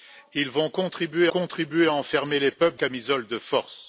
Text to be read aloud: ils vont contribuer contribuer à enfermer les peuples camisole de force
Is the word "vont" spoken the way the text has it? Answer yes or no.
yes